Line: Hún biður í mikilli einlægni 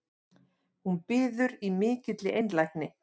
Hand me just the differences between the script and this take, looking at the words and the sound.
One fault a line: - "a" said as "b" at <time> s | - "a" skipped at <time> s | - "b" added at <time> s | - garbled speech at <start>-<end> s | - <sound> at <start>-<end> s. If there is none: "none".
none